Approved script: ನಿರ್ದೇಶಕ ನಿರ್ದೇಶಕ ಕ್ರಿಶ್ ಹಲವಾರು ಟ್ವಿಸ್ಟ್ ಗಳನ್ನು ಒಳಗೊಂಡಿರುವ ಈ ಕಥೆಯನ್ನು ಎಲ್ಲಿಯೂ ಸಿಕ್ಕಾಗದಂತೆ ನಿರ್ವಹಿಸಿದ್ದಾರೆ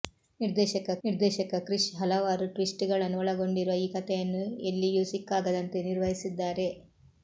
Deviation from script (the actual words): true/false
false